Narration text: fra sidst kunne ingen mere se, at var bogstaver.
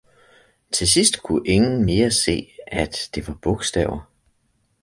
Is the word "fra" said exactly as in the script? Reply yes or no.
no